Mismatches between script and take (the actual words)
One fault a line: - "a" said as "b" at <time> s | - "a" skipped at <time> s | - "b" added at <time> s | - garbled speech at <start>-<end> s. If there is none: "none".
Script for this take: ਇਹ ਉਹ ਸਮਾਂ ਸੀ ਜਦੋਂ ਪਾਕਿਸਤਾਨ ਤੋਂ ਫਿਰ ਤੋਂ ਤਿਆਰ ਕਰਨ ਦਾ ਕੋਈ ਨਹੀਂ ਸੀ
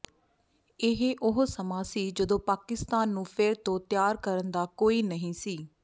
- "ਤੋਂ" said as "ਨੂੰ" at 3.1 s